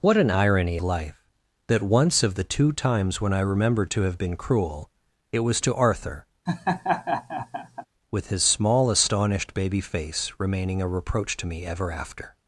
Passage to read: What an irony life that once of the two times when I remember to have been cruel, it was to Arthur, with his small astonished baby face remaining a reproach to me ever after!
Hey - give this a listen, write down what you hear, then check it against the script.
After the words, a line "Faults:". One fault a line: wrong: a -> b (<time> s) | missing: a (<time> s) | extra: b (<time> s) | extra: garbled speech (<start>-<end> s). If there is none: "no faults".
What an irony life that once of the two times when I remember to have been cruel, it was to Arthur, with his small astonished baby face remaining a reproach to me ever after!
Faults:
no faults